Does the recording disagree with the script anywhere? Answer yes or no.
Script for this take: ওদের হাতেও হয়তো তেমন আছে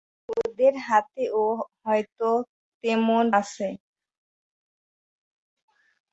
no